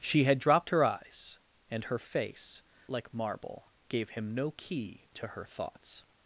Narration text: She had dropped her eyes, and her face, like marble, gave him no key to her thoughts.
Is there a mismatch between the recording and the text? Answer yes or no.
no